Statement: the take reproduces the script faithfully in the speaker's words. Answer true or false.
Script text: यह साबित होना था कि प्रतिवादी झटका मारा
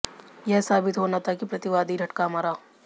true